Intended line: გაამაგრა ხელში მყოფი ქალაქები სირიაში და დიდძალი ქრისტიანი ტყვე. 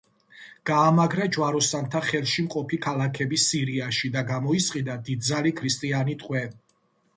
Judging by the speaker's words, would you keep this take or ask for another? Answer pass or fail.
fail